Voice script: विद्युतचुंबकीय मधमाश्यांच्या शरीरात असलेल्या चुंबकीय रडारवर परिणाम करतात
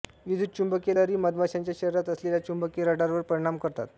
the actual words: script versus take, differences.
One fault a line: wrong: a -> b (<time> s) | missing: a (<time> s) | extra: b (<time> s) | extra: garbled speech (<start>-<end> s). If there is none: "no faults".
extra: लहरी (0.9 s)